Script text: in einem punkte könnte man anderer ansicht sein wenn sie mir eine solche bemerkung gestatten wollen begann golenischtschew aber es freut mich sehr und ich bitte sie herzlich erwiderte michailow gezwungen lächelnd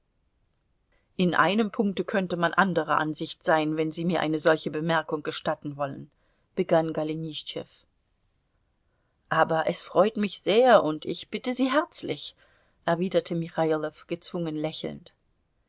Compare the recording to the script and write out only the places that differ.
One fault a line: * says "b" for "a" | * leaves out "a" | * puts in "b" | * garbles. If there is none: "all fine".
all fine